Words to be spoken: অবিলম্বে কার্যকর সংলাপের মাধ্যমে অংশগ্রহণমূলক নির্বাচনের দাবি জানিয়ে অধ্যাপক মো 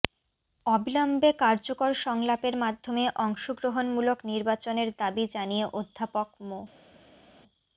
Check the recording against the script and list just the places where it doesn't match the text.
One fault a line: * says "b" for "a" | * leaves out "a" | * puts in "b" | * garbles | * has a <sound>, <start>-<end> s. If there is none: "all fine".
all fine